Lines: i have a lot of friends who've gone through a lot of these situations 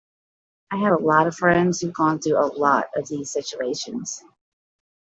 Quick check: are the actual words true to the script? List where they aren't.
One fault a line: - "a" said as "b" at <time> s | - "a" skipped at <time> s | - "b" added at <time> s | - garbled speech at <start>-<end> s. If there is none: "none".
none